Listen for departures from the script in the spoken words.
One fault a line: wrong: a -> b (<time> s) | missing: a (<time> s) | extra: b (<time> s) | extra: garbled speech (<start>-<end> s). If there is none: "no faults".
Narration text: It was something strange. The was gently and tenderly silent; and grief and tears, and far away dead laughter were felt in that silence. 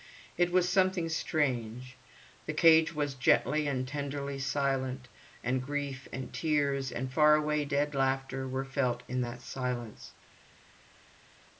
extra: cage (2.5 s)